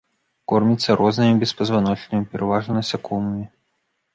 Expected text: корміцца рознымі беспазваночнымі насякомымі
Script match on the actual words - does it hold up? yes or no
no